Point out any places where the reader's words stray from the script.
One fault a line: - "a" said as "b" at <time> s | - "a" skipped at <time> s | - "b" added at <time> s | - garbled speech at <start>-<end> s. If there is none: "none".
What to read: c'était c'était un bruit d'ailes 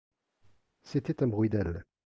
- "c'était" skipped at 1.2 s